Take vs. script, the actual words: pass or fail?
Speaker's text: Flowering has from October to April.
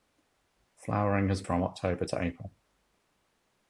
pass